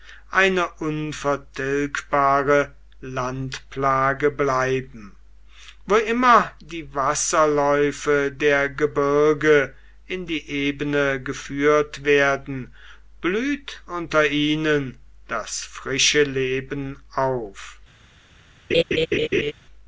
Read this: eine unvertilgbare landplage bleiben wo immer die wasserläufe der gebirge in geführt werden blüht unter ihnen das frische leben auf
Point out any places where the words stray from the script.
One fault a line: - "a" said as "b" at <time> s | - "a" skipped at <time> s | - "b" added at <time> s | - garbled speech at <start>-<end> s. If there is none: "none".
- "die ebene" added at 10.2 s